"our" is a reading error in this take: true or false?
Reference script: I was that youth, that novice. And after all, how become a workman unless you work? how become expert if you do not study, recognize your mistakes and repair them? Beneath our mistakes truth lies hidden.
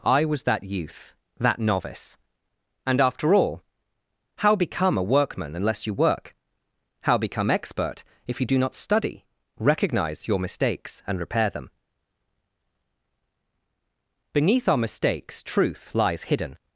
false